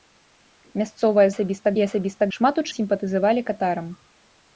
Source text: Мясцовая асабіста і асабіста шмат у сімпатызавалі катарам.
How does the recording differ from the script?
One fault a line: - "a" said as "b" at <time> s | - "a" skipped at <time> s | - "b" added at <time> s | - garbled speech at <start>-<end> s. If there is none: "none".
none